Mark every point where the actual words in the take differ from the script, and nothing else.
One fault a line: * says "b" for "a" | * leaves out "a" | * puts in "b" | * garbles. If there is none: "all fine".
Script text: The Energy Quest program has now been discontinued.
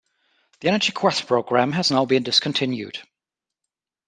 all fine